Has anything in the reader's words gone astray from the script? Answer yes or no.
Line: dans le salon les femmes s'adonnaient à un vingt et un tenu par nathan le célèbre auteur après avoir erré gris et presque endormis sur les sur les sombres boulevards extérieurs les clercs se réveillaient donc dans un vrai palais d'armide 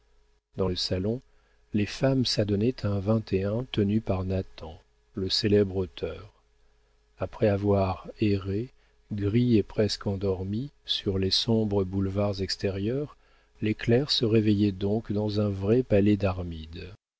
yes